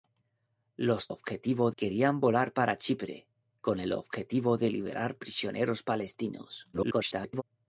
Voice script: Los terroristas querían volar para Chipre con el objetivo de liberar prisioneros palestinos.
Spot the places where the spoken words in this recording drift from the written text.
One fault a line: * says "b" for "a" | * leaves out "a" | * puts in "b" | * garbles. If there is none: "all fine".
* says "objetivo" for "terroristas"
* garbles